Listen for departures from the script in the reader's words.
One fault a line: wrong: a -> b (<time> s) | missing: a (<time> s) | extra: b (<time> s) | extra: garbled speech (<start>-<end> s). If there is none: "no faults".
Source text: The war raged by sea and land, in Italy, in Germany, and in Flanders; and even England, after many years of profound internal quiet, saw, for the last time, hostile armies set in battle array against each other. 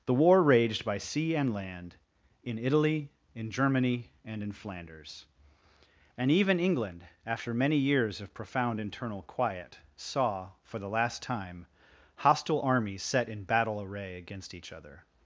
no faults